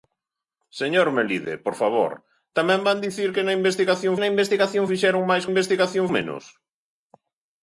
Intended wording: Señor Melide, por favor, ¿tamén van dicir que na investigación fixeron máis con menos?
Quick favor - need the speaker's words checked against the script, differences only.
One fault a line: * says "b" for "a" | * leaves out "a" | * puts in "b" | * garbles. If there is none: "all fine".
* puts in "na investigación"
* says "investigación" for "con"